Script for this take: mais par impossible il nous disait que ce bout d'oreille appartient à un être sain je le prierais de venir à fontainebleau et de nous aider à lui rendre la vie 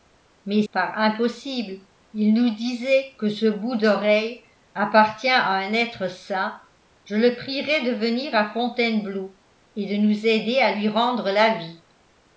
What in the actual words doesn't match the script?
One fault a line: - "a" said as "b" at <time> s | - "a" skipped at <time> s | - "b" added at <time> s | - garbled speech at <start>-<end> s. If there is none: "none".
none